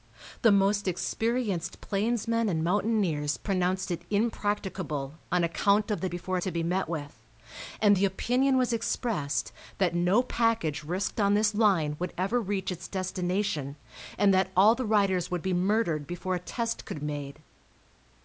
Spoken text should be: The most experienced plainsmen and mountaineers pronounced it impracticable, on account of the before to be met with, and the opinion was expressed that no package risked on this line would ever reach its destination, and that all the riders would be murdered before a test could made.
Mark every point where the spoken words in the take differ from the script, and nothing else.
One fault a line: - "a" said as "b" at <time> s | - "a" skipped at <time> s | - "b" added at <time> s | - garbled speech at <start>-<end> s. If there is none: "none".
none